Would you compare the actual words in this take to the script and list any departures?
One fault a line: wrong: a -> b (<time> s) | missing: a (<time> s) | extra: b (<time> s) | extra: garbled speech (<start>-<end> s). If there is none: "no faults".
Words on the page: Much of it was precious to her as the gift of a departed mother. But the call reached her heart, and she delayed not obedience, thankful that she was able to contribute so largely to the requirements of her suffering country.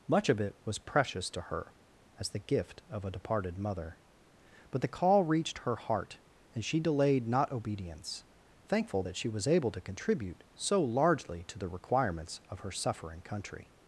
no faults